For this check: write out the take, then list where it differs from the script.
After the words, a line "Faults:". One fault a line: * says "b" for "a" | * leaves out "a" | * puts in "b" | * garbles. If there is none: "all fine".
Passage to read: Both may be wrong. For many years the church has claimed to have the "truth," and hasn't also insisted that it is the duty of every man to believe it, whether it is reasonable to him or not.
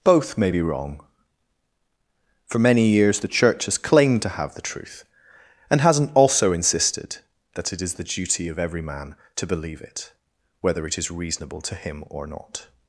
Both may be wrong. For many years the church has claimed to have the "truth," and hasn't also insisted that it is the duty of every man to believe it, whether it is reasonable to him or not.
Faults:
all fine